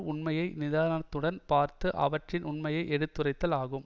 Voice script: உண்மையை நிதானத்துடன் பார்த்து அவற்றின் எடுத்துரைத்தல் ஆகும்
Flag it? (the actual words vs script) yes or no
yes